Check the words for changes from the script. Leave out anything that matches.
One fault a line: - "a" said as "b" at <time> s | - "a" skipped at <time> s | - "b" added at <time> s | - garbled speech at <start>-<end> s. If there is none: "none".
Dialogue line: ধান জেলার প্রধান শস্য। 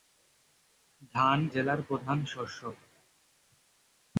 none